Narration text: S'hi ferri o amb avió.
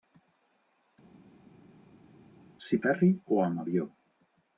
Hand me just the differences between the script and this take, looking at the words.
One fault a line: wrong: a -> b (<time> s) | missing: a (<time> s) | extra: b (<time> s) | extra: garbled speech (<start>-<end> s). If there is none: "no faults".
no faults